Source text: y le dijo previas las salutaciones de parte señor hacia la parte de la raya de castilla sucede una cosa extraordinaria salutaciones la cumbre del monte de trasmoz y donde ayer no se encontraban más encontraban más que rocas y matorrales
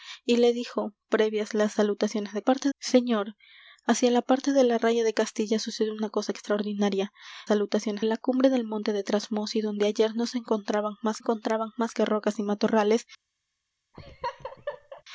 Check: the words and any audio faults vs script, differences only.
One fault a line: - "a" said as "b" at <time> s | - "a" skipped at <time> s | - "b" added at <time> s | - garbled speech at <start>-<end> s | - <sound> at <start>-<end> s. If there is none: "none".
- laugh at 13.9-15.0 s